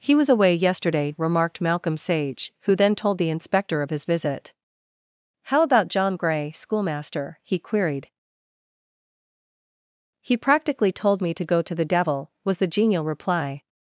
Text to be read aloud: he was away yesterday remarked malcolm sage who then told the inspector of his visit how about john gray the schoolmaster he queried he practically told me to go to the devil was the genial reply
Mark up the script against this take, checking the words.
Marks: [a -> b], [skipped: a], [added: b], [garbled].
he was away yesterday remarked malcolm sage who then told the inspector of his visit how about john gray [skipped: the] schoolmaster he queried he practically told me to go to the devil was the genial reply